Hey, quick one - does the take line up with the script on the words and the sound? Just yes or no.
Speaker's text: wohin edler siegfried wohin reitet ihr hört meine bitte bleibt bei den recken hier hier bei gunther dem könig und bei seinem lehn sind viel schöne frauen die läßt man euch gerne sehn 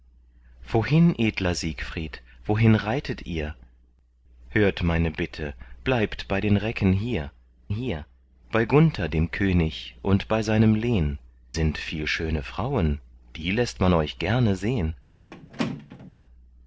no